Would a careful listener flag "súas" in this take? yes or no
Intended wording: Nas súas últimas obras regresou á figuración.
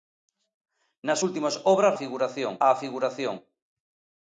yes